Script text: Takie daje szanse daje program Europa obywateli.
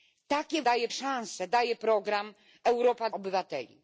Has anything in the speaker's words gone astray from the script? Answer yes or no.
no